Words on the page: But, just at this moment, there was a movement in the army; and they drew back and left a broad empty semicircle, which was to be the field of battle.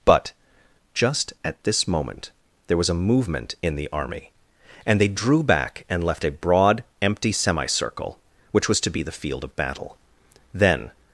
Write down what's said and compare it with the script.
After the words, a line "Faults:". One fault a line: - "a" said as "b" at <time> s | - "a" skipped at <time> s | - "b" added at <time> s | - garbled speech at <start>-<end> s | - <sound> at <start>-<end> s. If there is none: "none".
But, just at this moment, there was a movement in the army; and they drew back and left a broad empty semicircle, which was to be the field of battle. Then
Faults:
- "Then" added at 10.5 s